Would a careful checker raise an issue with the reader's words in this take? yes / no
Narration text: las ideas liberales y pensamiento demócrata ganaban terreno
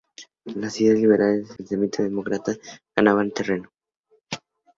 no